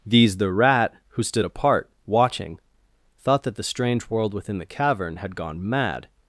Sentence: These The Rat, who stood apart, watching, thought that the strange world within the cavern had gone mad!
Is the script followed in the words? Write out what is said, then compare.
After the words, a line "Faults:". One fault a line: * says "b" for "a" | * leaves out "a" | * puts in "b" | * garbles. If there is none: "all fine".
These The Rat, who stood apart, watching, thought that the strange world within the cavern had gone mad!
Faults:
all fine